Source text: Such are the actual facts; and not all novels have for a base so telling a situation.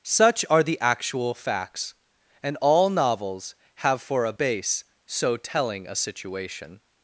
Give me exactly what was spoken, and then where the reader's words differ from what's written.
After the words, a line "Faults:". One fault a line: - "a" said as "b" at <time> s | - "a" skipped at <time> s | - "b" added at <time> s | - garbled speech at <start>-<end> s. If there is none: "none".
Such are the actual facts; and all novels have for a base so telling a situation.
Faults:
- "not" skipped at 2.6 s